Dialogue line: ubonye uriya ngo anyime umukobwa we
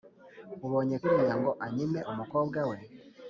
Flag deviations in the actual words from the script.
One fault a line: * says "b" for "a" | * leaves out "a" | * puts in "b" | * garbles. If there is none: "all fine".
all fine